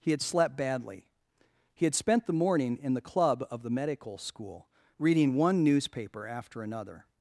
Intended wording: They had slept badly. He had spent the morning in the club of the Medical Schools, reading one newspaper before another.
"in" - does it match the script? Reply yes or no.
yes